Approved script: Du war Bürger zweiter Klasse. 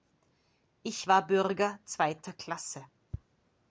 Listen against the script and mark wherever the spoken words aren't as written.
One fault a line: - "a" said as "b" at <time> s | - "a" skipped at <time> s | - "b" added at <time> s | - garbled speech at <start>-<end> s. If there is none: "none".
- "Du" said as "Ich" at 0.8 s